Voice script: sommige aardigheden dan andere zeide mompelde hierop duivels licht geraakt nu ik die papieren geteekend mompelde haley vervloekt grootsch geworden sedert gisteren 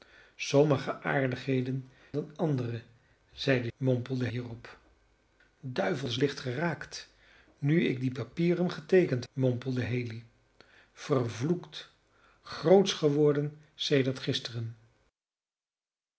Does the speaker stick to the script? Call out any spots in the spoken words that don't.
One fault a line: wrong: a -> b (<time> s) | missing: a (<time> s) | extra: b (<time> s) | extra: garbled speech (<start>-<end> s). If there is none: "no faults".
no faults